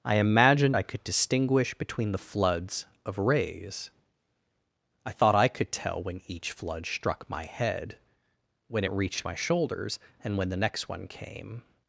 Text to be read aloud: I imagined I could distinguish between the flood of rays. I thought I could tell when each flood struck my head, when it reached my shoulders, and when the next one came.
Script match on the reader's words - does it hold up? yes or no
no